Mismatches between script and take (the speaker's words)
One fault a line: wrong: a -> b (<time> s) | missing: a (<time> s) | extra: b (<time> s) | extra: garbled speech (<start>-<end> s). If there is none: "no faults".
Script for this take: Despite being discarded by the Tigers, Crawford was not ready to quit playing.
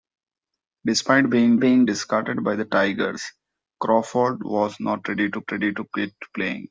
extra: being (1.6 s)
extra: ready to (5.5 s)